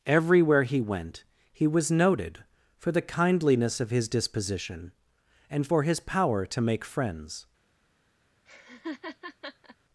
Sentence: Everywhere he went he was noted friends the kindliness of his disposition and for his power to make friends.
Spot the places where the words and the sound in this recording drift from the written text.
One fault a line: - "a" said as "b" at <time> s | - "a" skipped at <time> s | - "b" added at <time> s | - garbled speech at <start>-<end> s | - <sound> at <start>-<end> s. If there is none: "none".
- "friends" said as "for" at 2.8 s
- laugh at 8.5-9.8 s